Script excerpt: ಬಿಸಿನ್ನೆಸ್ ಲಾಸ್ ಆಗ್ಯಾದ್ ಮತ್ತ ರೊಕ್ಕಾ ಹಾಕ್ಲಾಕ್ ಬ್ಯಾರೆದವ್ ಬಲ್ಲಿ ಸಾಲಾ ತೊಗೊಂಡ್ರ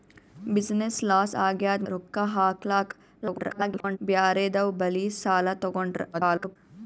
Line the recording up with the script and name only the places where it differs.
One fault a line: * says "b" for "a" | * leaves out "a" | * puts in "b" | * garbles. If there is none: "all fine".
* leaves out "ಮತ್ತ"
* garbles
* garbles